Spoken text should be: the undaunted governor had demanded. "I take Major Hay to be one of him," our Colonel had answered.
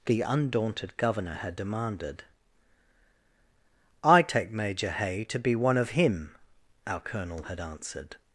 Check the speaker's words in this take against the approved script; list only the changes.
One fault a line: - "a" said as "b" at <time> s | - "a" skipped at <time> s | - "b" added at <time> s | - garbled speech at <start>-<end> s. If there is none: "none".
none